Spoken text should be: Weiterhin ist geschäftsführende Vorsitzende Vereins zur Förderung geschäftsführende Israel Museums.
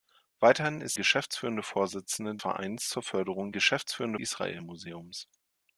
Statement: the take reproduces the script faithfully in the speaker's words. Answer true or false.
true